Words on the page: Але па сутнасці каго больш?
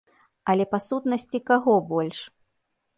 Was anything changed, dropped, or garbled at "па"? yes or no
no